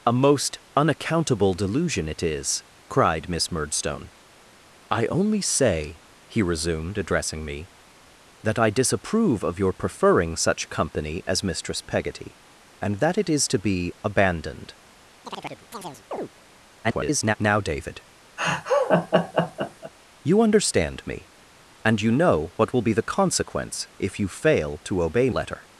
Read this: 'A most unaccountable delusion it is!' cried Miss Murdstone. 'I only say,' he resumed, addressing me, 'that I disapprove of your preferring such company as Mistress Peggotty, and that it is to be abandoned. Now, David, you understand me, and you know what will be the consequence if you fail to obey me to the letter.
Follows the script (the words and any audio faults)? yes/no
no